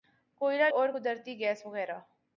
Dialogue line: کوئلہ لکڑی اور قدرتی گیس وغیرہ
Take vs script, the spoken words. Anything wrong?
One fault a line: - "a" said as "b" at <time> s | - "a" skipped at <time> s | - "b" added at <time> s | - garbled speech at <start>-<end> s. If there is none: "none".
- "لکڑی" skipped at 0.7 s